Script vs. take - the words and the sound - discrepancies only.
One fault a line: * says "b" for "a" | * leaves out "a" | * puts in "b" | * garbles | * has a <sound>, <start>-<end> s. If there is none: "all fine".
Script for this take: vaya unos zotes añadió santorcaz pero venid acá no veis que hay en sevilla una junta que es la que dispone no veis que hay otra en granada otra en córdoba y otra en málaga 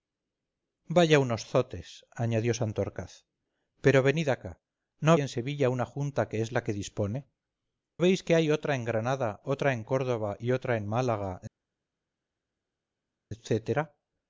* leaves out "veis que hay"
* leaves out "no"